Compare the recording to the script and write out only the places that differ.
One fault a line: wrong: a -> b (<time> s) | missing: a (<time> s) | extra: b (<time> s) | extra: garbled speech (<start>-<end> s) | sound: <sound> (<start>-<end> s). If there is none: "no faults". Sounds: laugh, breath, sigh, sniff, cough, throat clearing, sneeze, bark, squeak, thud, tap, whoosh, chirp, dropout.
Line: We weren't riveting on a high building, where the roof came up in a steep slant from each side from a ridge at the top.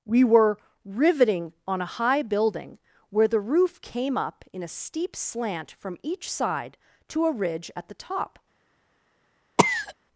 wrong: weren't -> were (0.2 s)
wrong: from -> to (7.1 s)
sound: cough (9.6-9.9 s)